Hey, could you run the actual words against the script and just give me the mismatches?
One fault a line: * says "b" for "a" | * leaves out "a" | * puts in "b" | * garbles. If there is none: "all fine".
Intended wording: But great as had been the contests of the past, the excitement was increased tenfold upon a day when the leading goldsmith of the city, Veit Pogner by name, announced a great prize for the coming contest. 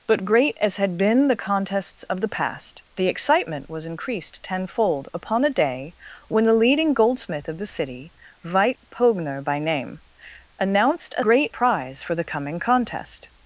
all fine